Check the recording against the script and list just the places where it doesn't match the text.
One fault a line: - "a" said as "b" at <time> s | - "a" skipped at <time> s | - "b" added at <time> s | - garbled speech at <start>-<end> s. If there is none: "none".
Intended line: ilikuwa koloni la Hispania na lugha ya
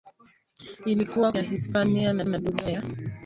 - "koloni" skipped at 1.3 s
- "na" added at 2.3 s